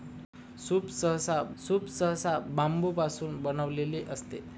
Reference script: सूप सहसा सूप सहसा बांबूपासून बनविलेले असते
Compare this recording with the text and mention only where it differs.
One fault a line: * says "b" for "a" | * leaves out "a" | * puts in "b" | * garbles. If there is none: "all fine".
all fine